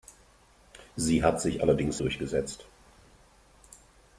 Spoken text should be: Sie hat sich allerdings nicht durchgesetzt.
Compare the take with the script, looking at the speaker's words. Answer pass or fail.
fail